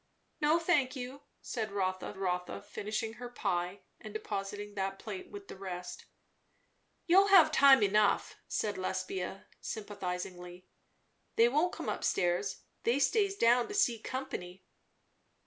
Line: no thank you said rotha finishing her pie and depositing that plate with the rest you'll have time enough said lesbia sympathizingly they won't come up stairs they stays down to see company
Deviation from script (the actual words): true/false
true